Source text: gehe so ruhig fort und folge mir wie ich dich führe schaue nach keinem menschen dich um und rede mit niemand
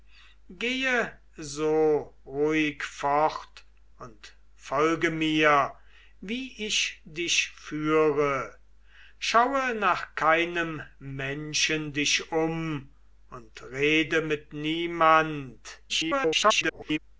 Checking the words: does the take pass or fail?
fail